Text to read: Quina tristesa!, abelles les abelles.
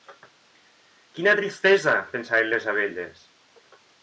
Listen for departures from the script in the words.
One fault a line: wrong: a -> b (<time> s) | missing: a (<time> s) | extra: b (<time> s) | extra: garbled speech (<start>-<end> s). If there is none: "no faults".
wrong: abelles -> pensaven (2.1 s)